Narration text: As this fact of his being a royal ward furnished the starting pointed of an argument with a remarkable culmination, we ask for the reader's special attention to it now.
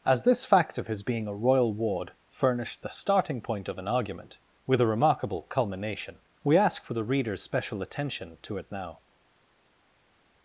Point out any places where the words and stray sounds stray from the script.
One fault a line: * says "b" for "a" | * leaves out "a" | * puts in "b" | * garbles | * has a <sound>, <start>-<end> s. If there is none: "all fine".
* says "point" for "pointed"